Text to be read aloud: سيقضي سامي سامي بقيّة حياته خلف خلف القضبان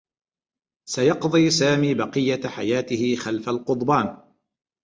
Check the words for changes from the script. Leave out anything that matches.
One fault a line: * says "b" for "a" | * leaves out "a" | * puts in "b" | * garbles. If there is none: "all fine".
* leaves out "سامي"
* leaves out "خلف"